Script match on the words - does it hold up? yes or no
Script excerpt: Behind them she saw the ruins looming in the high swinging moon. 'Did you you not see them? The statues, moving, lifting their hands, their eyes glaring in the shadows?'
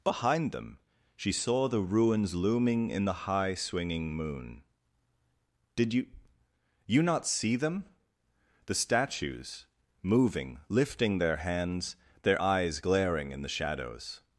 yes